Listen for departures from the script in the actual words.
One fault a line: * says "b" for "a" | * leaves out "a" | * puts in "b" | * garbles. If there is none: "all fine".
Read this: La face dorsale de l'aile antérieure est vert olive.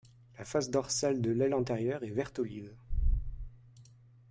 all fine